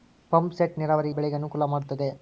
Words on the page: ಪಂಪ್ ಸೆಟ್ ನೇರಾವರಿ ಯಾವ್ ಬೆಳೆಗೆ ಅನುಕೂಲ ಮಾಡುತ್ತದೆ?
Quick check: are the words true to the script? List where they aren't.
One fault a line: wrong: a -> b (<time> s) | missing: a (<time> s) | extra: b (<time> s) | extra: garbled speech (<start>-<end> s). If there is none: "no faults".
missing: ಯಾವ್ (1.1 s)